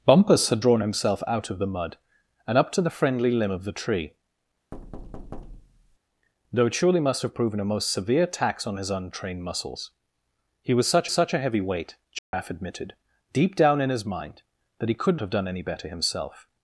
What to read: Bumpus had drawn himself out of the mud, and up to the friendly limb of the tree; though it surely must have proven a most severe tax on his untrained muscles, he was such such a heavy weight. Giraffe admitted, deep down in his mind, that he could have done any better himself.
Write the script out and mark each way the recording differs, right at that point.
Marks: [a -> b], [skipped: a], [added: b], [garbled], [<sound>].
Bumpus had drawn himself out of the mud, and up to the friendly limb of the tree; [thud] though it surely must have proven a most severe tax on his untrained muscles, he was such such a heavy weight. Giraffe [dropout] admitted, deep down in his mind, that he could have done any better himself.